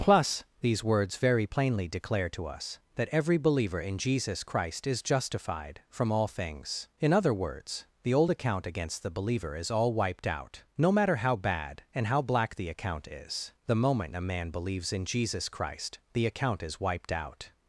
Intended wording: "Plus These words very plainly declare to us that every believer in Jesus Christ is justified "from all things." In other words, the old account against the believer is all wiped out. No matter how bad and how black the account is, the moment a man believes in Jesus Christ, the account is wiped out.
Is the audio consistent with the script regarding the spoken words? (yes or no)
yes